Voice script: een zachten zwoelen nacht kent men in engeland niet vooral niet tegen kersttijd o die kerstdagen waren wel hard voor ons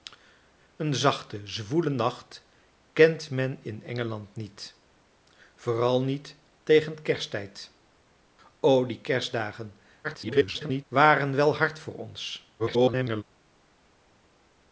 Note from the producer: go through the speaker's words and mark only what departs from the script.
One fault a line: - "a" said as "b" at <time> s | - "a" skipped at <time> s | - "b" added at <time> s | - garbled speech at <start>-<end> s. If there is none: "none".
- garbled speech at 10.0-10.8 s
- garbled speech at 12.6-13.2 s